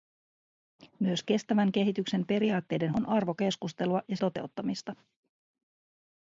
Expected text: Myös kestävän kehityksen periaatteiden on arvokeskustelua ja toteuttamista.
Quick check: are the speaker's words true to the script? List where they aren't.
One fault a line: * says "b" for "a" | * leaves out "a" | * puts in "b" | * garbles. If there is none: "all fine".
all fine